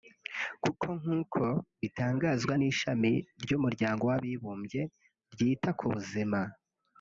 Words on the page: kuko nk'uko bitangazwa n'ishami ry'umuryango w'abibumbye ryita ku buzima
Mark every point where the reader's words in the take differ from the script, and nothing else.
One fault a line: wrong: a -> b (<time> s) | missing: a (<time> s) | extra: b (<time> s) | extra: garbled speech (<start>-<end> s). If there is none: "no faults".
no faults